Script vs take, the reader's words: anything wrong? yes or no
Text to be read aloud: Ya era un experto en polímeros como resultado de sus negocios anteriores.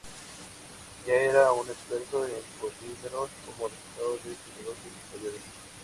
no